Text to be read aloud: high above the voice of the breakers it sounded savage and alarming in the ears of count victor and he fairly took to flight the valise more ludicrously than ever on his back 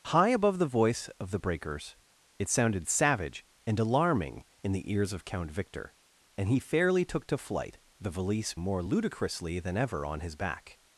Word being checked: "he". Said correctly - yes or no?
yes